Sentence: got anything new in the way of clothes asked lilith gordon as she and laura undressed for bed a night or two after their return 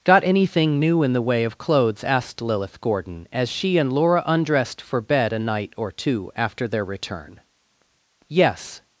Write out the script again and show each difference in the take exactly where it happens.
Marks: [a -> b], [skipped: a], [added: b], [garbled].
got anything new in the way of clothes asked lilith gordon as she and laura undressed for bed a night or two after their return [added: yes]